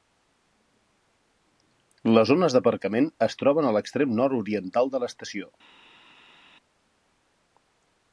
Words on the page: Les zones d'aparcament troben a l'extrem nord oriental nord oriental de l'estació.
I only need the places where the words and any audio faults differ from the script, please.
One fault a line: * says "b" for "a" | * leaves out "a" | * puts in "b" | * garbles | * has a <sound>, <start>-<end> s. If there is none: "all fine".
* puts in "es"
* leaves out "nord oriental"